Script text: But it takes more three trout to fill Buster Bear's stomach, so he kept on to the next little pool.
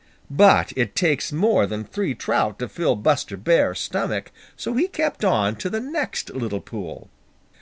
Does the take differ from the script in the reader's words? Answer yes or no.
yes